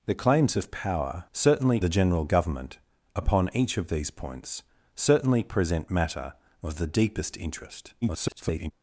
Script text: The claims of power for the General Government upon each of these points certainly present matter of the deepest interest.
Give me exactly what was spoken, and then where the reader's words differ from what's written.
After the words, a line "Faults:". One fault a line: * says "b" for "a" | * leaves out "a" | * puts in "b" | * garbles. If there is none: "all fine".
The claims of power certainly the General Government upon each of these points certainly present matter of the deepest interest. [garbled]
Faults:
* says "certainly" for "for"
* garbles